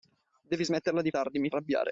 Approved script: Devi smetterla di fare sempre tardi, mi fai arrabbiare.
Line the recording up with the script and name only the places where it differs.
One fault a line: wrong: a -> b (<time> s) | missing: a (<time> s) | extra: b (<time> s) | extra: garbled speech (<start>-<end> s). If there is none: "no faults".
missing: fare sempre (1.1 s)
missing: fai (1.5 s)